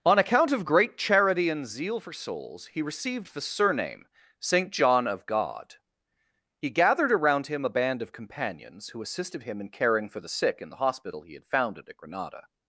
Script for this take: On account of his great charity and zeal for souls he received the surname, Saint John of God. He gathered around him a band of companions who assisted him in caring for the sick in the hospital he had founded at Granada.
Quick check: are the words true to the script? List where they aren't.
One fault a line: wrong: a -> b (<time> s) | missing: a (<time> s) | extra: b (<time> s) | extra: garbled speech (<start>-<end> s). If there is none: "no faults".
missing: his (0.7 s)